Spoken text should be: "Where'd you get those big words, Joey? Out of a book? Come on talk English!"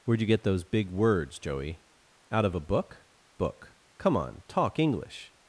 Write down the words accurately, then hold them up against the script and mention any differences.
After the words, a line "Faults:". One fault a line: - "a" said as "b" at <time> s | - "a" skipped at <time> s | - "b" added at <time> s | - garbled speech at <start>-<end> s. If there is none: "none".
"Where'd you get those big words, Joey? Out of a book book? Come on talk English!"
Faults:
- "book" added at 3.4 s